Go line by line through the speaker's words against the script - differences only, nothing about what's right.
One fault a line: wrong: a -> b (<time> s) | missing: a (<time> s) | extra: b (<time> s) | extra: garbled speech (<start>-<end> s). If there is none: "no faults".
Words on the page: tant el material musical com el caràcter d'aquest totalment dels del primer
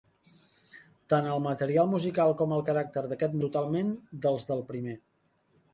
no faults